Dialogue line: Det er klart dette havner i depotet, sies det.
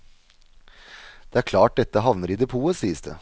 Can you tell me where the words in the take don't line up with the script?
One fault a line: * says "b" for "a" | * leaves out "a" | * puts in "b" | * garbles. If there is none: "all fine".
all fine